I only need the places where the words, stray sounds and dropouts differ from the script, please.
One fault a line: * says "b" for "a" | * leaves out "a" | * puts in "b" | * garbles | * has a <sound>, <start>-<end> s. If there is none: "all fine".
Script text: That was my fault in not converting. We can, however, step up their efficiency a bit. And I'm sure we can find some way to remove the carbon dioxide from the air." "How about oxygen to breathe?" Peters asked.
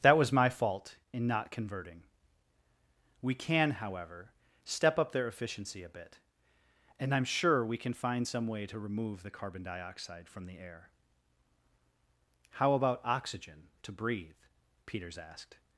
all fine